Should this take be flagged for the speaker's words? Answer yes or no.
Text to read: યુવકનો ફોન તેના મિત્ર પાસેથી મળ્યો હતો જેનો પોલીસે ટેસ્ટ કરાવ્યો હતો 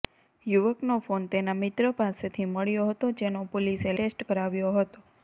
no